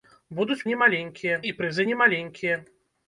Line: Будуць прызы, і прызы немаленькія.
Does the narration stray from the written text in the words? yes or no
yes